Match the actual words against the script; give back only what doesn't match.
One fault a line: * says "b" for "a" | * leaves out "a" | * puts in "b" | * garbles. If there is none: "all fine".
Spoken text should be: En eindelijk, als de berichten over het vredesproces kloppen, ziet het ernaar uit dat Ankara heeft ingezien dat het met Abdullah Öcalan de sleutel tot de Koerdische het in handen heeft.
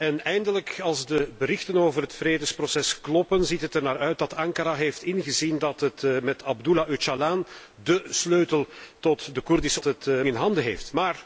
all fine